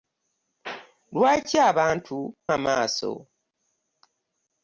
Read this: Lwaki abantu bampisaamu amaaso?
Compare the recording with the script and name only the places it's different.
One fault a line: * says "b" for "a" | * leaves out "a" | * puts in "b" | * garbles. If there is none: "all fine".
* leaves out "bampisaamu"